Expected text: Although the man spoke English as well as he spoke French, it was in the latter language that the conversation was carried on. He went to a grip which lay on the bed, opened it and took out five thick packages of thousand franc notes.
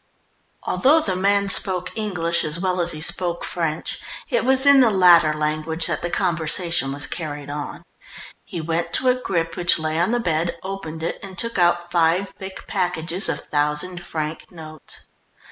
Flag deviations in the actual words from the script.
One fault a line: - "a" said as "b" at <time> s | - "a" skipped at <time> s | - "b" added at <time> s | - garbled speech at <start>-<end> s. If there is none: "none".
none